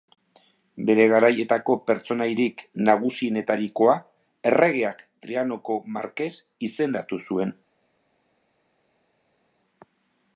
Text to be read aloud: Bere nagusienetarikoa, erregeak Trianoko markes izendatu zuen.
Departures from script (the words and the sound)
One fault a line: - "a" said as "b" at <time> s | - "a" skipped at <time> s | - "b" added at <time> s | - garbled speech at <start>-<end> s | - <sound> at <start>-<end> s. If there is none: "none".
- "garaietako pertsonaiarik" added at 1.1 s